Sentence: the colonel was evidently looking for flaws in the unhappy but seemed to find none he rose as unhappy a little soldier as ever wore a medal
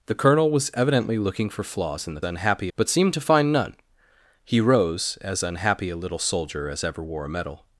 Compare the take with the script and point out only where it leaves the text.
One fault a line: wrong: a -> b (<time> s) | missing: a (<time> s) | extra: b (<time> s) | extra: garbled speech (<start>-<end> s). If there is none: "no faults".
no faults